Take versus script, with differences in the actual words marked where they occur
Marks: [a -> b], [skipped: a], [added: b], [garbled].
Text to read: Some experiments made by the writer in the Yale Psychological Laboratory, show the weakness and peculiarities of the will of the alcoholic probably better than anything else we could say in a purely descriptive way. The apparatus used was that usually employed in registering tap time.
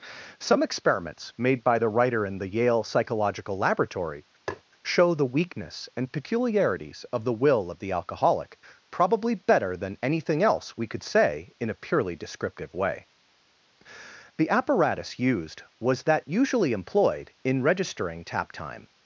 Some experiments made by the writer in the Yale Psychological Laboratory, show the weakness and peculiarities of the will of the alcoholic probably better than anything else we could say in a purely descriptive way. The apparatus used was that usually employed in registering tap time.